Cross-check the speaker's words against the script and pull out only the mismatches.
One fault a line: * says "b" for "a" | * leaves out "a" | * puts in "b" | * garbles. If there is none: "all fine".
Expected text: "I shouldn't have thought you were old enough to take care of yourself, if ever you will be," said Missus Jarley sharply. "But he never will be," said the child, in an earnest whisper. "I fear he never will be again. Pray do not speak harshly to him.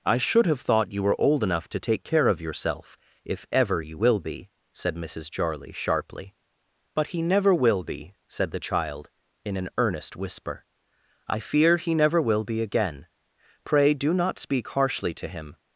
* says "should" for "shouldn't"